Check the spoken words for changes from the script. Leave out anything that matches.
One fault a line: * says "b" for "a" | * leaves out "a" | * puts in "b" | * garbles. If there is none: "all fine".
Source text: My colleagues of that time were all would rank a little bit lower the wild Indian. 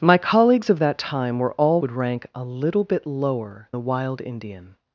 all fine